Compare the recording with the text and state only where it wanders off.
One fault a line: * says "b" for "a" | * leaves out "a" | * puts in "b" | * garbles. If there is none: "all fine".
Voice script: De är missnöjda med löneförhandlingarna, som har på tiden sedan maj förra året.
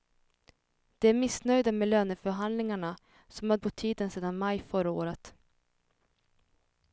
all fine